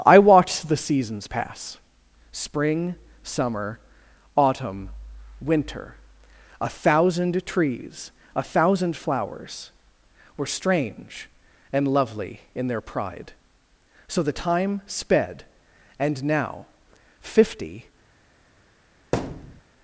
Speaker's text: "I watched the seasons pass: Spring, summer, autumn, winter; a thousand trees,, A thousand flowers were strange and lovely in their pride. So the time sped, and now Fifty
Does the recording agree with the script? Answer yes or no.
yes